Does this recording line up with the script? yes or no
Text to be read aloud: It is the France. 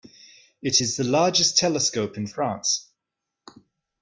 no